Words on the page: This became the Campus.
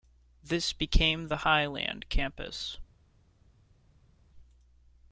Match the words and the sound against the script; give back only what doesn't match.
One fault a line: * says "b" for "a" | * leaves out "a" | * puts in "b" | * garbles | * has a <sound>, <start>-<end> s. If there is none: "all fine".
* puts in "Highland"